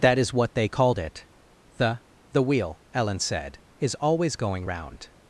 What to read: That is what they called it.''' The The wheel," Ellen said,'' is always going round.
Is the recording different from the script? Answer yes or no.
no